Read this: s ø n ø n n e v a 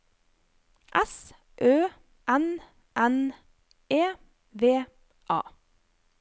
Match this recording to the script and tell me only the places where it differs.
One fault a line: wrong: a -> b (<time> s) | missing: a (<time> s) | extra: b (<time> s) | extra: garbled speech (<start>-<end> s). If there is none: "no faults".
missing: ø n (2.5 s)